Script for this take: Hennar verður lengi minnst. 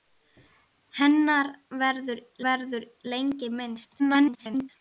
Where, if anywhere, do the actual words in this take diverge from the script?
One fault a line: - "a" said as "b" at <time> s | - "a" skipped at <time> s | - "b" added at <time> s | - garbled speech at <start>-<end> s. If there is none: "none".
- "verður" added at 2.5 s
- garbled speech at 4.0-4.7 s